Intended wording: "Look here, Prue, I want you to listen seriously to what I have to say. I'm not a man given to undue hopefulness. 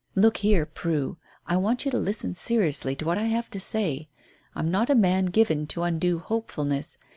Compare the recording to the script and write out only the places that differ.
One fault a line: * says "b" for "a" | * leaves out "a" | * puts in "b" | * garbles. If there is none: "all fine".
all fine